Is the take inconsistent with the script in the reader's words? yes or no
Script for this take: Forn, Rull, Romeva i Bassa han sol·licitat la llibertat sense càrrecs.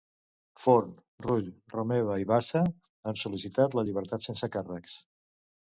no